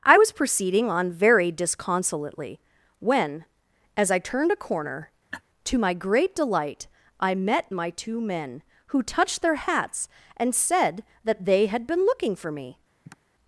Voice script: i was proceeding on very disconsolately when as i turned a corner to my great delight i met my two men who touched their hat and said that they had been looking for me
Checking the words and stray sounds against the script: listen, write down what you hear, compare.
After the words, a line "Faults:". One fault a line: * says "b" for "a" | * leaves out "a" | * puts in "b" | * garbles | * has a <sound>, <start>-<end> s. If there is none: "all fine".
i was proceeding on very disconsolately when as i turned a corner to my great delight i met my two men who touched their hats and said that they had been looking for me
Faults:
* has a laugh, 5.3-5.4 s
* says "hats" for "hat"
* has a sigh, 13.0-13.2 s